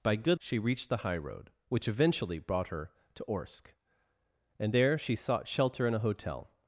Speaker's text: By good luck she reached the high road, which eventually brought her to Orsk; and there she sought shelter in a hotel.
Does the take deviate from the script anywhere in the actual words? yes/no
yes